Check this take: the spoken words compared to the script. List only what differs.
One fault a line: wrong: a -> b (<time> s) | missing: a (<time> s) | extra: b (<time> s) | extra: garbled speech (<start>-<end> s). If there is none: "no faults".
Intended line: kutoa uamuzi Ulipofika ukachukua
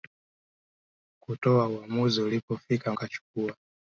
no faults